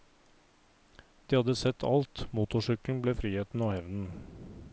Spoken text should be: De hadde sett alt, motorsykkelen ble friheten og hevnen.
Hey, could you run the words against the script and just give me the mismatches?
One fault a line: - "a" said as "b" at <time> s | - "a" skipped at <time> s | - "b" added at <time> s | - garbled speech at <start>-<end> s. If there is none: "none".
none